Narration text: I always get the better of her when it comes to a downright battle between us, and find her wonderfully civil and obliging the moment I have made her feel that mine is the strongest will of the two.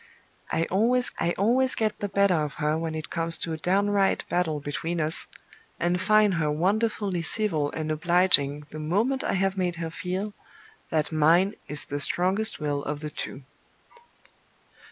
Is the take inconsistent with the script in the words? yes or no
yes